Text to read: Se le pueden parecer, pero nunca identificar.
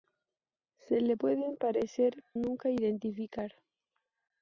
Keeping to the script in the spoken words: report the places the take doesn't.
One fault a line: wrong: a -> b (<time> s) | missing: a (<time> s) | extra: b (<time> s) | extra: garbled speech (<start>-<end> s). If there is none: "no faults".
missing: pero (2.2 s)